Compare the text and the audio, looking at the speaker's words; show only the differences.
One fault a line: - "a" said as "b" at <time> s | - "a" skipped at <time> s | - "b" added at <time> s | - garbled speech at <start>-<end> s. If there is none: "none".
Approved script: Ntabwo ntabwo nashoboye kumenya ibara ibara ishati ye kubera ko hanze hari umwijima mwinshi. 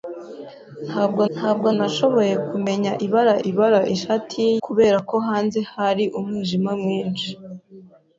none